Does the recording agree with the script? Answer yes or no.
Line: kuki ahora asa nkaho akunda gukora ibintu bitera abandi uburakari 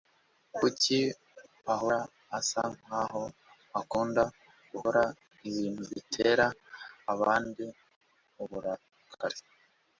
yes